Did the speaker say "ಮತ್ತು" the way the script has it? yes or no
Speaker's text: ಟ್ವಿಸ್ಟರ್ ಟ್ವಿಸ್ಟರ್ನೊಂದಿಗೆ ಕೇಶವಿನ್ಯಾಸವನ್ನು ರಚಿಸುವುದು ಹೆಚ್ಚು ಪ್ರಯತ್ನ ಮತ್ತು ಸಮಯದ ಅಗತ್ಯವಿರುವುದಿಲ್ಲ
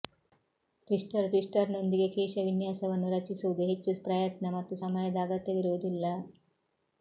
yes